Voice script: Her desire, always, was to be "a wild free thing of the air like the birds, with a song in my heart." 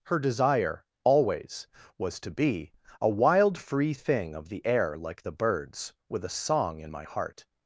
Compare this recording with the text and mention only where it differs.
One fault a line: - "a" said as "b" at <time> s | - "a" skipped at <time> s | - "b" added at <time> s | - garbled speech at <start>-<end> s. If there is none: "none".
none